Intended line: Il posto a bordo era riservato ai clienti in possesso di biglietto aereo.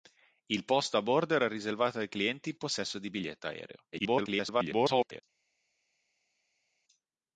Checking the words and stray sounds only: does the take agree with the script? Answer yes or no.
no